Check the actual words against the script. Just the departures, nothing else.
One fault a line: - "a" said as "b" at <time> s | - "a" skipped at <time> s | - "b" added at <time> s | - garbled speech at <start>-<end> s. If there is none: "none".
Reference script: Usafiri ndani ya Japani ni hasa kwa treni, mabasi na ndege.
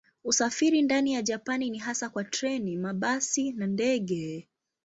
none